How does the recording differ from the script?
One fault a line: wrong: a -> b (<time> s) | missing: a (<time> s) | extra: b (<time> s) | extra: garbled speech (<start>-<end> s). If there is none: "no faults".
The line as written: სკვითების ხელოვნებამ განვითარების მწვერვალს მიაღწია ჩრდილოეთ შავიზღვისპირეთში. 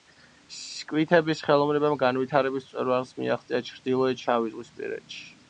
no faults